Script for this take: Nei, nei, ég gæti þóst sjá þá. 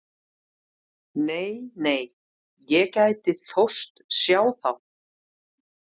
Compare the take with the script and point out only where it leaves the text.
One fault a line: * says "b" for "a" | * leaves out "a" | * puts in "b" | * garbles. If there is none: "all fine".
all fine